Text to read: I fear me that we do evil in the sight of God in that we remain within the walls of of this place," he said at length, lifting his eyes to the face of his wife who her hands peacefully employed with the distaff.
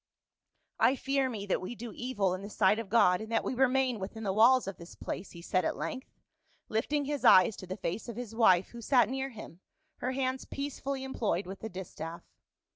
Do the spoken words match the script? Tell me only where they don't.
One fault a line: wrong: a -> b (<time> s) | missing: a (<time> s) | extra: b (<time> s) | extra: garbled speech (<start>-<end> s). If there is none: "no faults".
missing: of (4.8 s)
extra: sat near him (8.8 s)